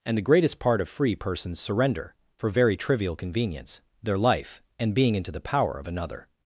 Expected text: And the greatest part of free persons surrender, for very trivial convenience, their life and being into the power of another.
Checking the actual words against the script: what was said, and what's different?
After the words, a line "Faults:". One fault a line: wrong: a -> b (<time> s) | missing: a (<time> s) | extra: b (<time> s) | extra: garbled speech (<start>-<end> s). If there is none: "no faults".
And the greatest part of free persons surrender, for very trivial convenience, their life and being into the power of another.
Faults:
no faults